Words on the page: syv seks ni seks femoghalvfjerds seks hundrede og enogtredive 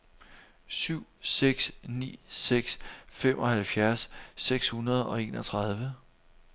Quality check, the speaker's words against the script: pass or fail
pass